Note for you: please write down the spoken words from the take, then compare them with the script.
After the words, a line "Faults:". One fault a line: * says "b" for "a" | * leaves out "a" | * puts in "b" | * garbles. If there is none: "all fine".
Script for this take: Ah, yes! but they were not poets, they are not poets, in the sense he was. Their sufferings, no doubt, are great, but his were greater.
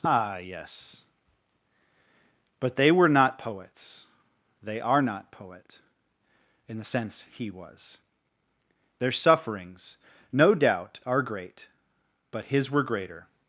Ah, yes! but they were not poets, they are not poet, in the sense he was. Their sufferings, no doubt, are great, but his were greater.
Faults:
* says "poet" for "poets"